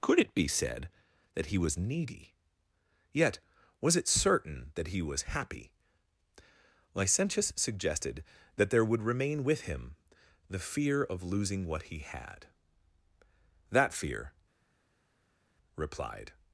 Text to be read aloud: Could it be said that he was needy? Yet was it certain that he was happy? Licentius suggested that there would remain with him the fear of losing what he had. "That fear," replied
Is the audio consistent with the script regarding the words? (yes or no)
yes